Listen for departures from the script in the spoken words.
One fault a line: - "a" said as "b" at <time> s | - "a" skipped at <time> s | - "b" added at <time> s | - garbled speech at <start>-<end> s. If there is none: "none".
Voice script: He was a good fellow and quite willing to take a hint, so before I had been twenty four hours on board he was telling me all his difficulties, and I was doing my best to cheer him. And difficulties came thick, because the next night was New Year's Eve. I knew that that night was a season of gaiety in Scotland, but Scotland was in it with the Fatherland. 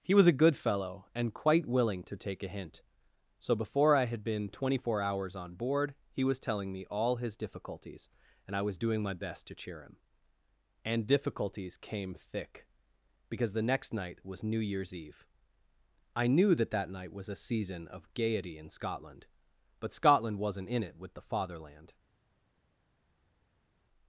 - "was" said as "wasn't" at 20.4 s